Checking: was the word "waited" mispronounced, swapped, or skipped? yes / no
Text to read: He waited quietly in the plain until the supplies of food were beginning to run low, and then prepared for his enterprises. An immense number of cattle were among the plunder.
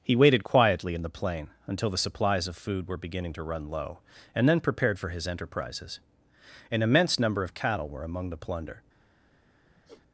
no